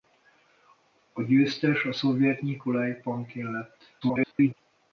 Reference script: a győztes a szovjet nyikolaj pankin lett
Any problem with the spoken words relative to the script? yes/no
yes